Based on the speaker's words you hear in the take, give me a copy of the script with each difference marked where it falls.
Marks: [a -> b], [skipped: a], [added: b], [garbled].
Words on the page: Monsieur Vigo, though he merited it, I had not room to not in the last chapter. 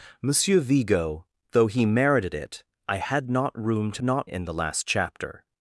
Monsieur Vigo, though he merited it, I had not room to not in the last chapter.